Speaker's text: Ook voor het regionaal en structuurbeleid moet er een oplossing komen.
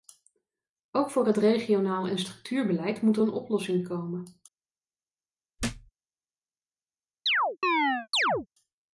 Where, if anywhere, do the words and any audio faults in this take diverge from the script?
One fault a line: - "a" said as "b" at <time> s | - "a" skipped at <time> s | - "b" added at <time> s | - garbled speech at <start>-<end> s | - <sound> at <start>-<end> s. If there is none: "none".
- thud at 5.6-5.9 s
- chirp at 7.3-8.5 s